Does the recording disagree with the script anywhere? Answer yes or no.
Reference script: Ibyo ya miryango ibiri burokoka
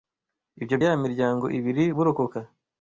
no